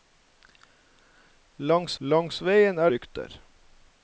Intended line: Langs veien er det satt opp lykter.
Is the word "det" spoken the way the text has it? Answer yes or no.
no